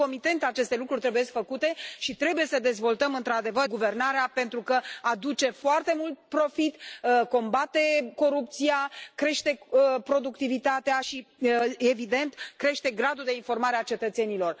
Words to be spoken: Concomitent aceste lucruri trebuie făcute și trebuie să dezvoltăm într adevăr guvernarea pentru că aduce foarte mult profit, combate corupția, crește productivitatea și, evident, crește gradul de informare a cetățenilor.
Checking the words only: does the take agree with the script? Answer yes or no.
yes